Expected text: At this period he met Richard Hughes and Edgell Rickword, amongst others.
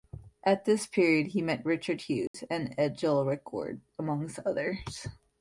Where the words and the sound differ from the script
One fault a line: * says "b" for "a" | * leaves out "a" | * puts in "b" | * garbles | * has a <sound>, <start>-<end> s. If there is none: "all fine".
* has a dropout, 2.3-2.3 s